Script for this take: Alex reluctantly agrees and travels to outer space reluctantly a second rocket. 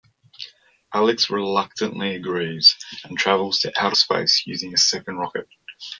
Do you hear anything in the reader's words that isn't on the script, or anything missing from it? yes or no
yes